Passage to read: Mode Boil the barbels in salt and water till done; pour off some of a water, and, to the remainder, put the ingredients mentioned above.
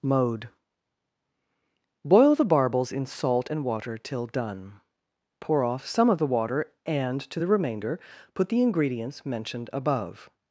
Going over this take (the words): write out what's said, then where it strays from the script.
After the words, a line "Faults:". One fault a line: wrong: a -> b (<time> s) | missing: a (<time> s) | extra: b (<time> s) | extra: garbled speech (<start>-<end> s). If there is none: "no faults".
Mode Boil the barbels in salt and water till done; pour off some of the water, and, to the remainder, put the ingredients mentioned above.
Faults:
wrong: a -> the (6.2 s)